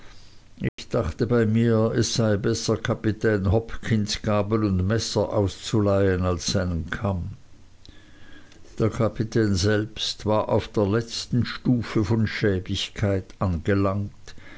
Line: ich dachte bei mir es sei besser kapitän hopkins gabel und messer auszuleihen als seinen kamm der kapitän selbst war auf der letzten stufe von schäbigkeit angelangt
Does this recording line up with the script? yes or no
yes